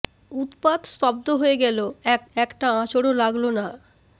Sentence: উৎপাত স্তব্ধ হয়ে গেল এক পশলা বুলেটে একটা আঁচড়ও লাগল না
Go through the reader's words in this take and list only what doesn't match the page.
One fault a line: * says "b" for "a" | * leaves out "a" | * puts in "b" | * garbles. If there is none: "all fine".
* leaves out "পশলা বুলেটে"